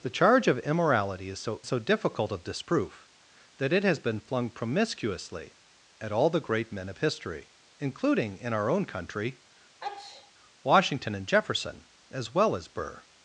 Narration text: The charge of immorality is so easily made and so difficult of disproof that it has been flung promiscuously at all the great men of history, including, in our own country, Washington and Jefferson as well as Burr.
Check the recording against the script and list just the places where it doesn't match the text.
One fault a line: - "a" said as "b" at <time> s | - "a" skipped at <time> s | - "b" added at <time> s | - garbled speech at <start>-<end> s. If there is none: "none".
- "easily made and" skipped at 1.6 s